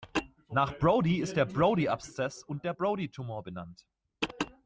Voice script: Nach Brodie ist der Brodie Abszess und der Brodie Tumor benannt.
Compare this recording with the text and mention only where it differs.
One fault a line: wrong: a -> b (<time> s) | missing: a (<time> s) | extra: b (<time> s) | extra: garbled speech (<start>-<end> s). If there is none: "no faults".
no faults